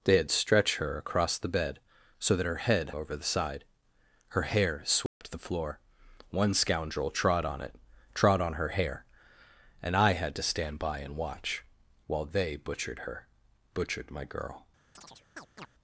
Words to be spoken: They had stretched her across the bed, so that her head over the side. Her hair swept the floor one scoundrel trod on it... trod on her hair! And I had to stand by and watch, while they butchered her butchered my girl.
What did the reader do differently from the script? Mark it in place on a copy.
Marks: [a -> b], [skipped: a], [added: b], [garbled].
They had stretched her across the bed, so that her head over the side. Her hair swept the floor one scoundrel trod on it... trod on her hair! And I had to stand by and watch, while they butchered her butchered my girl.